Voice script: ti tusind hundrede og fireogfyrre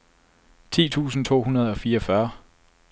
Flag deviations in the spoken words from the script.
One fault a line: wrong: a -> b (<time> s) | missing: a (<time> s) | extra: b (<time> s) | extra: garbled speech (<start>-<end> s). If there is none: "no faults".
extra: to (1.2 s)